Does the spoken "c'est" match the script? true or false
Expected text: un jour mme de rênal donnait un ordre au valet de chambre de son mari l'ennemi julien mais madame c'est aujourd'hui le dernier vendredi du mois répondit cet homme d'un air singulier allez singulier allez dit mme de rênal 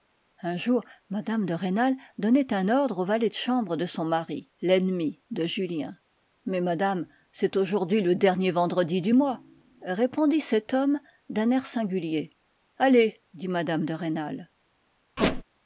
true